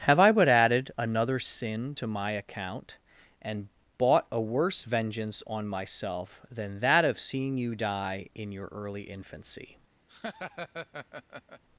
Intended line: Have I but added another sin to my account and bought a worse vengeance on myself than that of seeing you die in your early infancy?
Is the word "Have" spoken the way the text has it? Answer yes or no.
yes